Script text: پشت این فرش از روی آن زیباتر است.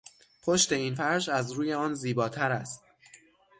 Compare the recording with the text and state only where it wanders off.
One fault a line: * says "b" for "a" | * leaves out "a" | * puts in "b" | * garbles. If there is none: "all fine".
all fine